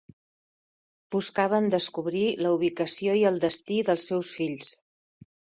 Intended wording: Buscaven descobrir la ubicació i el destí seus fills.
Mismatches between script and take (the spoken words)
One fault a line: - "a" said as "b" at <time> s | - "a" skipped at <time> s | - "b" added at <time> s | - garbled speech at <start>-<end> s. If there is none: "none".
- "dels" added at 3.9 s